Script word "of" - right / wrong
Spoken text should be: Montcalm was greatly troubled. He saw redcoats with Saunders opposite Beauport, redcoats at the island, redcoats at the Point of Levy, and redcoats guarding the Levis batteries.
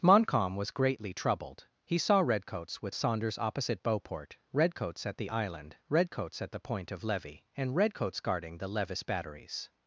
right